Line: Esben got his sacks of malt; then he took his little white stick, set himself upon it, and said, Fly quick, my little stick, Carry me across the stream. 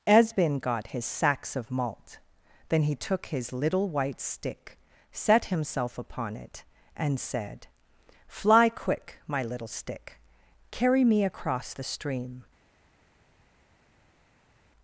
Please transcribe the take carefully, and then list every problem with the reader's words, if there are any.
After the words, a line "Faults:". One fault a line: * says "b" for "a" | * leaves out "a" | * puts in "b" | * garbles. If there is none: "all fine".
Esben got his sacks of malt; then he took his little white stick, set himself upon it, and said, Fly quick, my little stick, Carry me across the stream.
Faults:
all fine